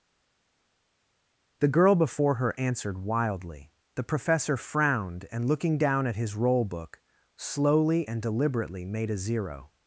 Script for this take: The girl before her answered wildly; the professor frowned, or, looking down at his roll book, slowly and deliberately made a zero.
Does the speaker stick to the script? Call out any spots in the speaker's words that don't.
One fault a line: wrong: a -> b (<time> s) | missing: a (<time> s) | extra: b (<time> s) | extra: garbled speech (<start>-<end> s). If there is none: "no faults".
wrong: or -> and (5.3 s)